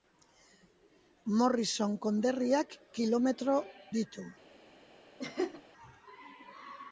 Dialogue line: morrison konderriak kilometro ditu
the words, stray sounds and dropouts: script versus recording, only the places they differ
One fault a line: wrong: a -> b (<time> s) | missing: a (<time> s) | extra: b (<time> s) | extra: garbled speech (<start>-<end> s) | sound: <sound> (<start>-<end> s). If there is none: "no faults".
sound: laugh (5.2-5.6 s)